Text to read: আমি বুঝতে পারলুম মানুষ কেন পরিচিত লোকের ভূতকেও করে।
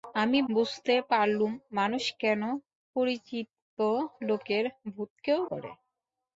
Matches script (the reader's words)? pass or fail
pass